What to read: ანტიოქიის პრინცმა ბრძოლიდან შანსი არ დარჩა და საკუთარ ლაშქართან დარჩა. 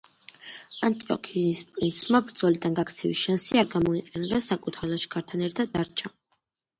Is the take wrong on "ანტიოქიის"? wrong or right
right